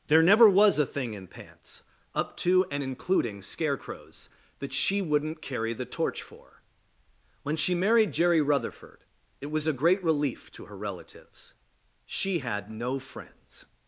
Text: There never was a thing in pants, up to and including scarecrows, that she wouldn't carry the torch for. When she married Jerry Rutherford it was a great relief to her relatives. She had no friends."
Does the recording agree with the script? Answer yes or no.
yes